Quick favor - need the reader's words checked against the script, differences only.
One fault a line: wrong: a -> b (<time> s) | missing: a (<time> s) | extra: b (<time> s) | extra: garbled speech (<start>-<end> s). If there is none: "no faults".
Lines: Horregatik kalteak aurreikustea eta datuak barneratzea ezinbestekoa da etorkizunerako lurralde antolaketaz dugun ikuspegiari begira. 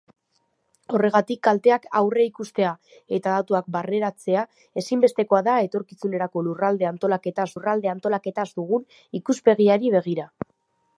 extra: lurralde antolaketaz (7.5 s)